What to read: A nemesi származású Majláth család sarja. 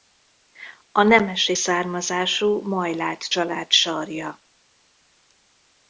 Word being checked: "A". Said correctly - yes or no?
yes